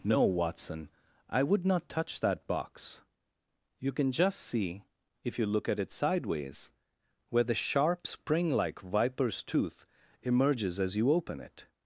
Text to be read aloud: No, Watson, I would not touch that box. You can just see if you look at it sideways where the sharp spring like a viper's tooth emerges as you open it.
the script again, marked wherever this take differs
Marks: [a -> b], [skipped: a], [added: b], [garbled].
No, Watson, I would not touch that box. You can just see if you look at it sideways where the sharp spring like [skipped: a] viper's tooth emerges as you open it.